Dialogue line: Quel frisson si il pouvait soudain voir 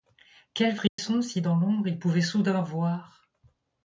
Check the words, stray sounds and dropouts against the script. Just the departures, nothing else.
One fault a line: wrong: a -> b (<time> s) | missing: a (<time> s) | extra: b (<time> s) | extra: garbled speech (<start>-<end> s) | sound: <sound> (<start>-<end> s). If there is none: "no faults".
sound: dropout (0.9-1.0 s)
extra: dans l'ombre (1.4 s)